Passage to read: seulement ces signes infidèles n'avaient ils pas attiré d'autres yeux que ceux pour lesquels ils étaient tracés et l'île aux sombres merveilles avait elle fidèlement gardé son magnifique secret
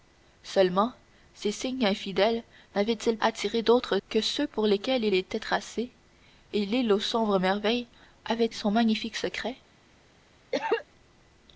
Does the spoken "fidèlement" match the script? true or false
false